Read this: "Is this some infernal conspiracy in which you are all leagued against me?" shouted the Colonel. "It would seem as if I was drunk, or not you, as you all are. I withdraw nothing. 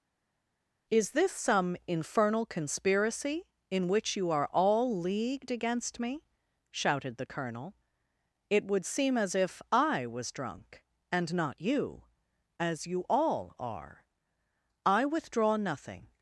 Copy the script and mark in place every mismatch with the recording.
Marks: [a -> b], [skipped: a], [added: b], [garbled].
"Is this some infernal conspiracy in which you are all leagued against me?" shouted the Colonel. "It would seem as if I was drunk, [or -> and] not you, as you all are. I withdraw nothing.